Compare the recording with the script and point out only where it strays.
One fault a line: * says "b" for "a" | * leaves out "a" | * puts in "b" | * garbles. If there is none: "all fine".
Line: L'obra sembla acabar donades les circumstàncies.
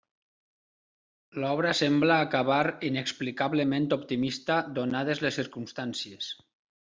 * puts in "inexplicablement optimista"